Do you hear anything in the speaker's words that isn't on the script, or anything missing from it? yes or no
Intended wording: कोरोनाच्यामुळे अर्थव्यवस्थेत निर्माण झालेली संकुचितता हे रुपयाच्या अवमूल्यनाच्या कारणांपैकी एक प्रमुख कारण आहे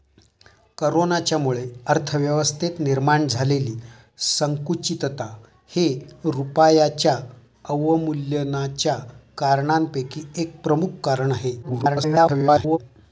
yes